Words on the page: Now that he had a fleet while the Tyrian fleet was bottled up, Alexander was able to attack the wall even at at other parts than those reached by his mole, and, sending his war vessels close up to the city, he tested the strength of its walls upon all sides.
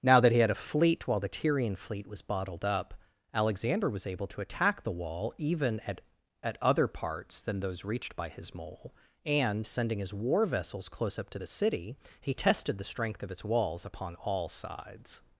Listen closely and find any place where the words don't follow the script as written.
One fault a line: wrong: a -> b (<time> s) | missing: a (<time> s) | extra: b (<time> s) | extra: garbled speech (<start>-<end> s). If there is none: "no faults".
no faults